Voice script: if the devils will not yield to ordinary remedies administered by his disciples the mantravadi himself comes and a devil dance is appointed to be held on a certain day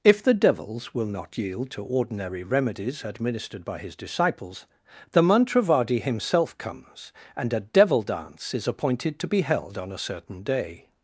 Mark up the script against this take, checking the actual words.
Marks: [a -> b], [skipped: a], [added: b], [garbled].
if the devils will not yield to ordinary remedies administered by his disciples the mantravadi himself comes and a devil dance is appointed to be held on a certain day